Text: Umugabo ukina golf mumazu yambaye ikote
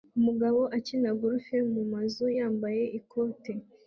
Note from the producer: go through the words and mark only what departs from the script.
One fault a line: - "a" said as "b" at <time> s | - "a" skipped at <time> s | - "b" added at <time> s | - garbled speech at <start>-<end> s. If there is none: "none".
none